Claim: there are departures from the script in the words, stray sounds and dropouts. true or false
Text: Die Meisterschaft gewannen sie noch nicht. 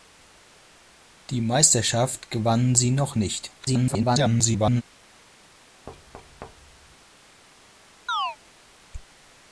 true